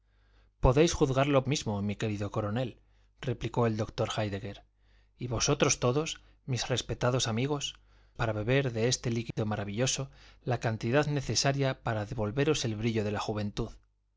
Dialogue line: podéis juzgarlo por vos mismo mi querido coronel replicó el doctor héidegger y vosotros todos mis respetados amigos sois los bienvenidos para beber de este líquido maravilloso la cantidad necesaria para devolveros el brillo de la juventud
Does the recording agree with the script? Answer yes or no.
no